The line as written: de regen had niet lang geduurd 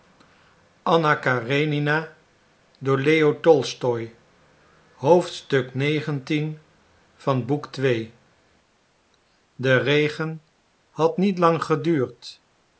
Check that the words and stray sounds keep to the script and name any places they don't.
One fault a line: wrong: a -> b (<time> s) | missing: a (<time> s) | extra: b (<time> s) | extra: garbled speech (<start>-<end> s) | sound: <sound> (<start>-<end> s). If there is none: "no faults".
no faults